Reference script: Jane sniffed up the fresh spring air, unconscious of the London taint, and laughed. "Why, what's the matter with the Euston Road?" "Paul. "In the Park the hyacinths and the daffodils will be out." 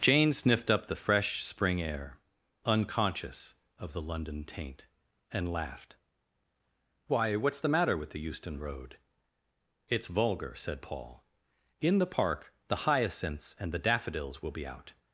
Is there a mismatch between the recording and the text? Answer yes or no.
yes